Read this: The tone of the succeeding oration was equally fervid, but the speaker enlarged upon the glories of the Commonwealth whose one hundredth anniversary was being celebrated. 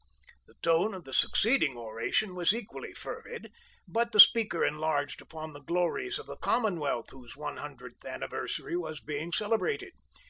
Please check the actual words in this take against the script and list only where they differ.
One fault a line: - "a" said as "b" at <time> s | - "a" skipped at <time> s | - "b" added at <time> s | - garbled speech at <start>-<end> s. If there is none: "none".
none